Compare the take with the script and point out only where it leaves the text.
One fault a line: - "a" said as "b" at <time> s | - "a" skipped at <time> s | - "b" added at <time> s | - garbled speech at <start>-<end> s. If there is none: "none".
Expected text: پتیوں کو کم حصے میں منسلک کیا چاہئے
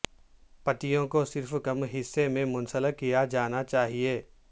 - "صرف" added at 1.2 s
- "جانا" added at 3.2 s